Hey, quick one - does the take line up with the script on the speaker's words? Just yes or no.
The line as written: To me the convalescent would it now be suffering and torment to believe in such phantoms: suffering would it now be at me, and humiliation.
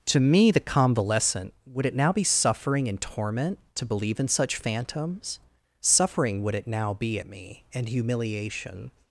yes